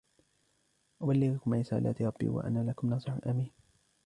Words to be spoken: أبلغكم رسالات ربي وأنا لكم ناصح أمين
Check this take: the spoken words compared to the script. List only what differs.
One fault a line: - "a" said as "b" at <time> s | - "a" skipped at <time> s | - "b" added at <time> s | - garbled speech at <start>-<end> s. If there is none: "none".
none